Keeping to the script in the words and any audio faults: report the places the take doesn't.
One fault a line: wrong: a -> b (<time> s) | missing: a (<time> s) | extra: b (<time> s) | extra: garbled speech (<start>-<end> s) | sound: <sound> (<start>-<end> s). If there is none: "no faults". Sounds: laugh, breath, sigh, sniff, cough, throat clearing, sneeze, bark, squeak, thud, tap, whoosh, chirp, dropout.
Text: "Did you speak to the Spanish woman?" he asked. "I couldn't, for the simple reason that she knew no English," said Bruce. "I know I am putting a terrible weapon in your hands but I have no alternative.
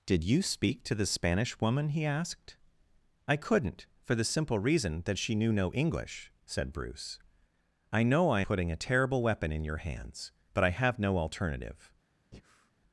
missing: am (8.4 s)
sound: breath (12.3-12.7 s)